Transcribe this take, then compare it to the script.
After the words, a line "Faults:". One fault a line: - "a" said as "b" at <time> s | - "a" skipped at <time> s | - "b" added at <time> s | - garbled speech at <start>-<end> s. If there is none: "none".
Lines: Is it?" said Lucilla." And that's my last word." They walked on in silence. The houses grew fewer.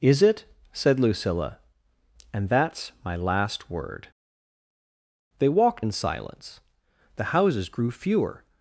Is it?" said Lucilla." And that's my last word." They walked in silence. The houses grew fewer.
Faults:
- "on" skipped at 5.8 s